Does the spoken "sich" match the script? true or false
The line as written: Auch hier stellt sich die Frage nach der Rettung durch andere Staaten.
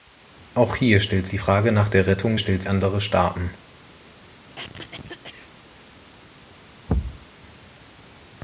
false